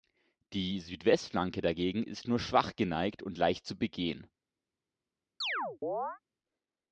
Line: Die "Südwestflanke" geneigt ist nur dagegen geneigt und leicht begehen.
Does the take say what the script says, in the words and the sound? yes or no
no